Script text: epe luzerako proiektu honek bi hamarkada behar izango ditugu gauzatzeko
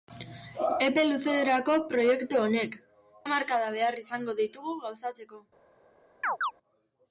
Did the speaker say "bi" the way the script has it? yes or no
no